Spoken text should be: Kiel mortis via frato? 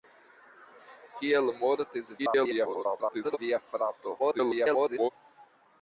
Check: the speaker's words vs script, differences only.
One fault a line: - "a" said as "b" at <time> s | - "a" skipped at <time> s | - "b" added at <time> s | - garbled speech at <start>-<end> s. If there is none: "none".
- garbled speech at 2.2-3.4 s
- garbled speech at 4.2-5.1 s